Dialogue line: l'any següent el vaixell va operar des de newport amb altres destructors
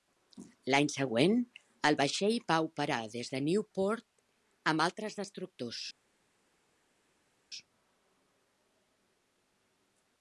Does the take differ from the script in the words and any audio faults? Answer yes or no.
no